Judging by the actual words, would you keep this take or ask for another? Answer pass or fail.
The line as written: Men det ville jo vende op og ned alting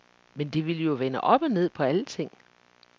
fail